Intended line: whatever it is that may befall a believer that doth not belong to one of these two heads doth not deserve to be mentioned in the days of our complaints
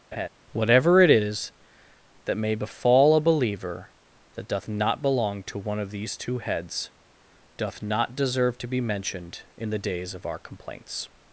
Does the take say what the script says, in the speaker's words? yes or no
yes